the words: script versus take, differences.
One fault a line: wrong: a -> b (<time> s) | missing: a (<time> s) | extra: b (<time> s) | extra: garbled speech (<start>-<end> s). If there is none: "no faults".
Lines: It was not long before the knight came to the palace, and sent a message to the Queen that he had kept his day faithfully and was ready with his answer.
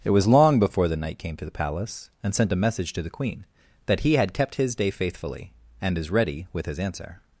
missing: not (0.3 s)
wrong: was -> is (6.0 s)